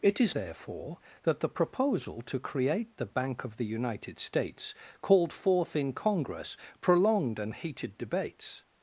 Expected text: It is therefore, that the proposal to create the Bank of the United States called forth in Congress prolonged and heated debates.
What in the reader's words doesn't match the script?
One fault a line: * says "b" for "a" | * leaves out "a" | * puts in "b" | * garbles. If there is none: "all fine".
all fine